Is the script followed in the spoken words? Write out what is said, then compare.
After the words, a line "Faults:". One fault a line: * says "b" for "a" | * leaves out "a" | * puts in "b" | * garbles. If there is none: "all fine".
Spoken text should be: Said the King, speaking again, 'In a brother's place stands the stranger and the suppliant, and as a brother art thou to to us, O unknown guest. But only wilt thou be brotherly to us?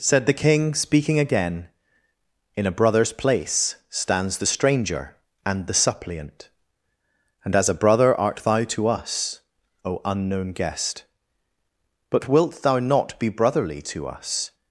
Said the King, speaking again, 'In a brother's place stands the stranger and the suppliant, and as a brother art thou to us, O unknown guest. But wilt thou not be brotherly to us?
Faults:
* leaves out "to"
* leaves out "only"
* puts in "not"